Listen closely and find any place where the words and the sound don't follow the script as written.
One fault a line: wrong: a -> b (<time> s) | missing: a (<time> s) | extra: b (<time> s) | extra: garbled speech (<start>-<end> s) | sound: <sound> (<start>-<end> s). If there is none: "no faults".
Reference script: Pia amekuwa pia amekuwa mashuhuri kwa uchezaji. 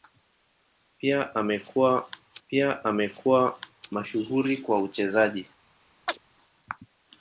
sound: chirp (6.1-6.2 s)